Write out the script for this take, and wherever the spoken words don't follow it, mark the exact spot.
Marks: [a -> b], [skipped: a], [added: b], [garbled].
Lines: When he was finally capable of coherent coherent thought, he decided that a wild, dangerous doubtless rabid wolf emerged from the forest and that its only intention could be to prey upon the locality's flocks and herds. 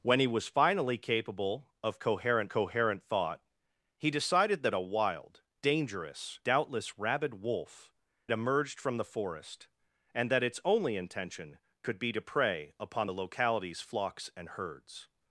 When he was finally capable of coherent coherent thought, he decided that a wild, dangerous doubtless rabid wolf emerged from the forest and that its only intention could be to prey upon the locality's flocks and herds.